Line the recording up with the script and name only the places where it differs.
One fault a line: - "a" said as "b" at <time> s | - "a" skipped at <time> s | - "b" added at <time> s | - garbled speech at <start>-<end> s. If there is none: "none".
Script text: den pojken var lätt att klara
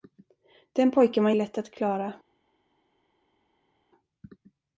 none